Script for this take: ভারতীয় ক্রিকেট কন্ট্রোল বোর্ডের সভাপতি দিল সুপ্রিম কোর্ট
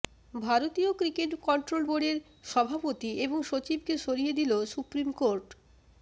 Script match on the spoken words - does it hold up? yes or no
no